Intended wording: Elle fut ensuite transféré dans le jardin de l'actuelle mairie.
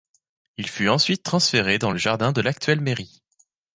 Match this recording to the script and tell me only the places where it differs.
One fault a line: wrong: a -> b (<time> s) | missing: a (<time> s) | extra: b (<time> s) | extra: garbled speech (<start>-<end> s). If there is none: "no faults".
wrong: Elle -> Il (0.6 s)